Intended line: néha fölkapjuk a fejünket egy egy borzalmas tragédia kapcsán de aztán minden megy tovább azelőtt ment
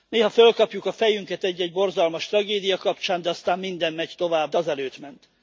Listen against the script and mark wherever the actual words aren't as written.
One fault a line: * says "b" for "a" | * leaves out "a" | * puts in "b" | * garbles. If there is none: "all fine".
all fine